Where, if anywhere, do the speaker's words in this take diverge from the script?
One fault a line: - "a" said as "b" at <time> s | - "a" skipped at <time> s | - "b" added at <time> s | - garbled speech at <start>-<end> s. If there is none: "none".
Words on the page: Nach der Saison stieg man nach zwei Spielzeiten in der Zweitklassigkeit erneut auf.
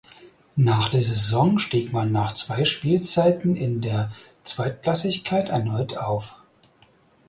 none